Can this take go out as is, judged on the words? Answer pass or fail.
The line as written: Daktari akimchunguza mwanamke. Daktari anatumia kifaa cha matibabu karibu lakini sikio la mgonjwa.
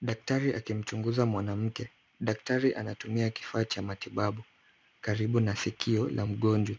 fail